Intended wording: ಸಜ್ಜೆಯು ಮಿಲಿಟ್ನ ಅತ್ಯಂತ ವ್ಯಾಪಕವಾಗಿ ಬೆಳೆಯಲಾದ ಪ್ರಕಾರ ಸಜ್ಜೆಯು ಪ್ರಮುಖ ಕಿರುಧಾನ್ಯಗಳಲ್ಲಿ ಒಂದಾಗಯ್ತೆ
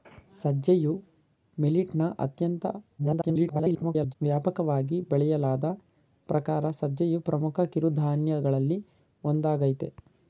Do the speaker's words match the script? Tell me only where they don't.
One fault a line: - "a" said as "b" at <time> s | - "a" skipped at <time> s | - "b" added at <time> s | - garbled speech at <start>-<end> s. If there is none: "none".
- garbled speech at 3.0-4.1 s